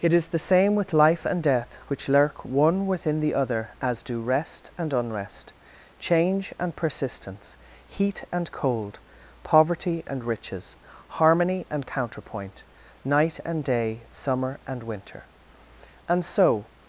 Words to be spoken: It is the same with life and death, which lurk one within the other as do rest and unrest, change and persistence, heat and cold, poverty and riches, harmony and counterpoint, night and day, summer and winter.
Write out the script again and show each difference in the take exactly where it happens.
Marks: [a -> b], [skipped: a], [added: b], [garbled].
It is the same with life and death, which lurk one within the other as do rest and unrest, change and persistence, heat and cold, poverty and riches, harmony and counterpoint, night and day, summer and winter. [added: And so]